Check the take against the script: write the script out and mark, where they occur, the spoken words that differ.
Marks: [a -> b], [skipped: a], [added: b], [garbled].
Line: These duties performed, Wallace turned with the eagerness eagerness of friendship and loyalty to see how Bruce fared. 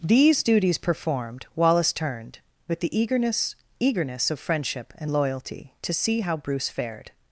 These duties performed, Wallace turned with the eagerness eagerness of friendship and loyalty to see how Bruce fared.